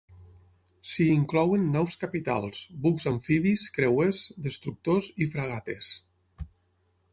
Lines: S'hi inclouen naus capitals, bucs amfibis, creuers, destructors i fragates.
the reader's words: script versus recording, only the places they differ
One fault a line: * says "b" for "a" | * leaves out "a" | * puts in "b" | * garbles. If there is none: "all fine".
all fine